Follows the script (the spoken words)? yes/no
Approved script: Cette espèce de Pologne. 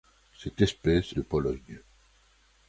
yes